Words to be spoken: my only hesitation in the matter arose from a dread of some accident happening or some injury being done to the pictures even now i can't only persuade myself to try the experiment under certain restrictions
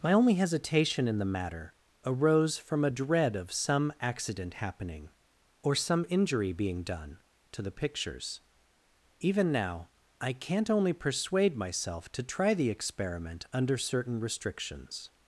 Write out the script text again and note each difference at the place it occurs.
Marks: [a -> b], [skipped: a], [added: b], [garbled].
my only hesitation in the matter arose from a dread of some accident happening or some injury being done to the pictures even now i can't only persuade myself to try the experiment under certain restrictions